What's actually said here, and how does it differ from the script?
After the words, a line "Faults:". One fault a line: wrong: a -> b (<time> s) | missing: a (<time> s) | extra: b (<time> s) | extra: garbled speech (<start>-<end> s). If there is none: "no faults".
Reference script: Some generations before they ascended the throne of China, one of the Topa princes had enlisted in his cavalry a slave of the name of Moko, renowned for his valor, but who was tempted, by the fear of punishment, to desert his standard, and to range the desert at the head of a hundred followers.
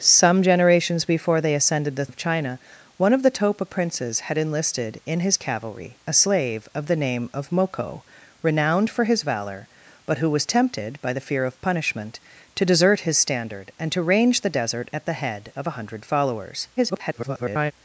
Some generations before they ascended the of China, one of the Topa princes had enlisted in his cavalry a slave of the name of Moko, renowned for his valor, but who was tempted, by the fear of punishment, to desert his standard, and to range the desert at the head of a hundred followers. [garbled]
Faults:
missing: throne (2.1 s)
extra: garbled speech (16.8-17.7 s)